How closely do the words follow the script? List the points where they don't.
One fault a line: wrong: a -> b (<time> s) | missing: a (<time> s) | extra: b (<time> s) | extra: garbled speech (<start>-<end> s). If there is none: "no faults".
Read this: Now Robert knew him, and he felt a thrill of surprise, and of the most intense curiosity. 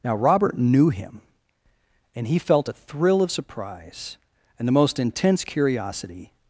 missing: of (4.7 s)